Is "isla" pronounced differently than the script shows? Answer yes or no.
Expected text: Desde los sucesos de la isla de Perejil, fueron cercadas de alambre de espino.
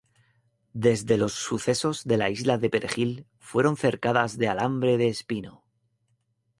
no